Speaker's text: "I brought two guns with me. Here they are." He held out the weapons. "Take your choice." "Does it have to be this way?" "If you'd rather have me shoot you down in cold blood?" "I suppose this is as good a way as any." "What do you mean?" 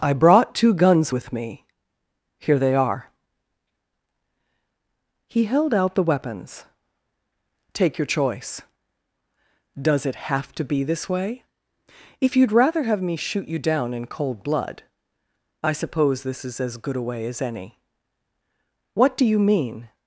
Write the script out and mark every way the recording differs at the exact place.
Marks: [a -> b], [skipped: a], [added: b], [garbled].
"I brought two guns with me. Here they are." He held out the weapons. "Take your choice." "Does it have to be this way?" "If you'd rather have me shoot you down in cold blood?" "I suppose this is as good a way as any." "What do you mean?"